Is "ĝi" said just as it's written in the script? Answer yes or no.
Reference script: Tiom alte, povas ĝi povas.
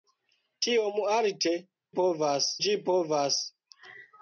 yes